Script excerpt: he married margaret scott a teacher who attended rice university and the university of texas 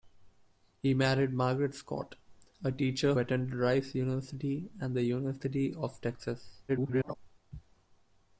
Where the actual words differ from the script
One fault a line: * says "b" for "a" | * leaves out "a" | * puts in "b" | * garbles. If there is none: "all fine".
* leaves out "who"
* garbles